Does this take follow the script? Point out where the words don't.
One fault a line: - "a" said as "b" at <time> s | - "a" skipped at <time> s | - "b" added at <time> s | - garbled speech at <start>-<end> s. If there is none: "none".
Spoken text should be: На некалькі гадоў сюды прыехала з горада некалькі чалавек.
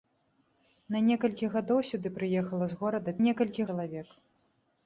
none